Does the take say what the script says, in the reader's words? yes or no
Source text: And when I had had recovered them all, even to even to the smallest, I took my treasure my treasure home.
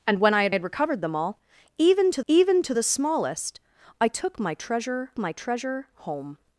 yes